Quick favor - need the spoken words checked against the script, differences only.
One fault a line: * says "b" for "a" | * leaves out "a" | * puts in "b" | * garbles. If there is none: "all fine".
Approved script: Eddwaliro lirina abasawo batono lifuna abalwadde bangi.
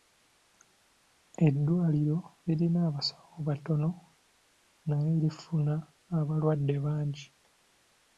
* puts in "naye"